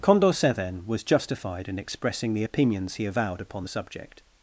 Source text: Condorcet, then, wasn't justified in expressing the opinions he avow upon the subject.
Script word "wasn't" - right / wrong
wrong